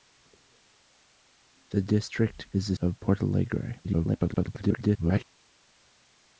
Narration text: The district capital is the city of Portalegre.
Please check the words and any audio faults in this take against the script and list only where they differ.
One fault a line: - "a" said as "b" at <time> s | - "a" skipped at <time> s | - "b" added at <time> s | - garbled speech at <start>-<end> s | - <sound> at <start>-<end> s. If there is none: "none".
- "capital" skipped at 2.5 s
- "city" skipped at 2.7 s
- garbled speech at 3.8-5.2 s